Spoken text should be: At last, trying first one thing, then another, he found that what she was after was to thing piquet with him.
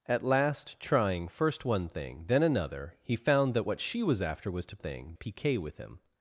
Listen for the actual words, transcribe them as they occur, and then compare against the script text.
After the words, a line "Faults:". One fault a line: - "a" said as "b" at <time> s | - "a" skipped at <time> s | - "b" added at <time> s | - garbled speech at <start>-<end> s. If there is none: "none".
At last, trying first one thing, then another, he found that what she was after was to thing piquet with him.
Faults:
none